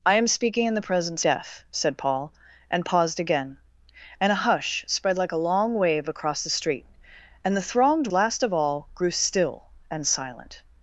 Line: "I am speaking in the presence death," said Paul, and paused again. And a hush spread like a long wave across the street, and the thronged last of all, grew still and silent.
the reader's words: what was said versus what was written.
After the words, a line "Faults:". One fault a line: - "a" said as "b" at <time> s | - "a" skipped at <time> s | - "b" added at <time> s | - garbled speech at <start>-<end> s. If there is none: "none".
"I am speaking in the presence death," said Paul, and paused again. And a hush spread like a long wave across the street, and the thronged last of all, grew still and silent.
Faults:
none